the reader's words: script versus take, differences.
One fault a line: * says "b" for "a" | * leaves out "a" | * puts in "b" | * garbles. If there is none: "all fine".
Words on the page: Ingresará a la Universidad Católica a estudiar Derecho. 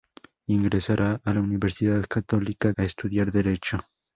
all fine